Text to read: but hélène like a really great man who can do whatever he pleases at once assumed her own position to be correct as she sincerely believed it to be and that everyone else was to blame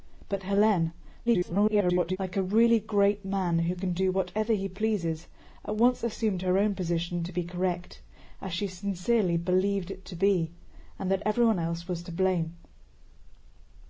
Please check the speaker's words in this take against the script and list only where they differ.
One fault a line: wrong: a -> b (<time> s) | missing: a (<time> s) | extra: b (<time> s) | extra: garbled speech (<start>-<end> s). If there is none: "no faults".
extra: garbled speech (1.3-2.2 s)